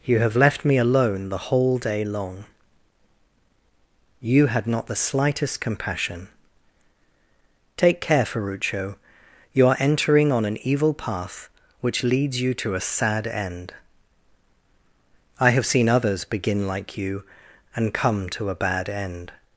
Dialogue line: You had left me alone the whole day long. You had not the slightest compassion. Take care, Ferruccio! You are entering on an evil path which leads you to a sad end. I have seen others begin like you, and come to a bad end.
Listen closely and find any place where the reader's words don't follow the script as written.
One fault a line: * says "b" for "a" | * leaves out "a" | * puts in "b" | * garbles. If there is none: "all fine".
* says "have" for "had"